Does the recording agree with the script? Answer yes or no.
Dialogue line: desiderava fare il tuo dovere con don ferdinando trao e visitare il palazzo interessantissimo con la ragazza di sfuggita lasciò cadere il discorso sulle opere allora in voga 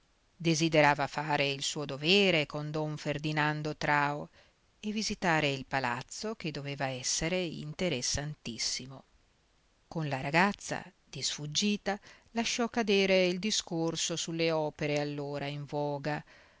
no